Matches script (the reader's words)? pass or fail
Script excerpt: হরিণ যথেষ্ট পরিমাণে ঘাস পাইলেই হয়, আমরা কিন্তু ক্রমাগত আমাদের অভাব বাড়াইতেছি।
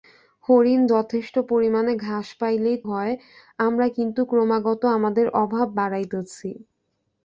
pass